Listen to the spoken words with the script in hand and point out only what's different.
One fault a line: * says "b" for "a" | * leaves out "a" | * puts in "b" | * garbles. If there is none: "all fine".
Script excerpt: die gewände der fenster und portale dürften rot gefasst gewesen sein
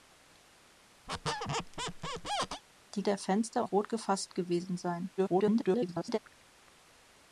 * leaves out "gewände"
* leaves out "und portale dürften"
* garbles